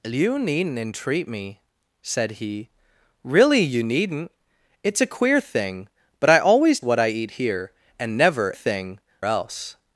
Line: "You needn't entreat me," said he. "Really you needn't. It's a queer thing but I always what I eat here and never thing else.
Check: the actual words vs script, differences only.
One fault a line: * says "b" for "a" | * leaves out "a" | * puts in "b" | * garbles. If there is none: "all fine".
all fine